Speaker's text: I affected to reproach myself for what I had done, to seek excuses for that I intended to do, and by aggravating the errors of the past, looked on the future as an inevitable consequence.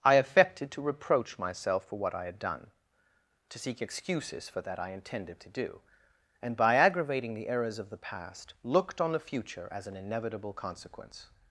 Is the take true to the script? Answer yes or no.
yes